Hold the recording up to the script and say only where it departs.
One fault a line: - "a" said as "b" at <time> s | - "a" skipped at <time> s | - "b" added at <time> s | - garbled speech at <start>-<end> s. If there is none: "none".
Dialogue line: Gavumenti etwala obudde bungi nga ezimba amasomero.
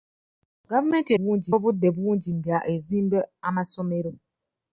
- "etwala" said as "bungi" at 1.2 s